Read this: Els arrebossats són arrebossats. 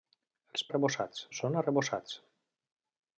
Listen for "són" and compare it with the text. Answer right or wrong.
right